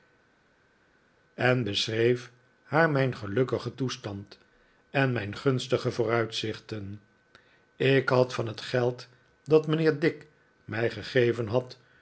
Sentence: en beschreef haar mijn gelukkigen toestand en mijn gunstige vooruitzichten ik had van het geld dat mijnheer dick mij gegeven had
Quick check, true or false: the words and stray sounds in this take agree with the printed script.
true